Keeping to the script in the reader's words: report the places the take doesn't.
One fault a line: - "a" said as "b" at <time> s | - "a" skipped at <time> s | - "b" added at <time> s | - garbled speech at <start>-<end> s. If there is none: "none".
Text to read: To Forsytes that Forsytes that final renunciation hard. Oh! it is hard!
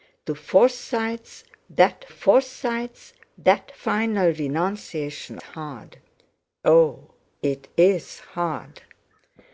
none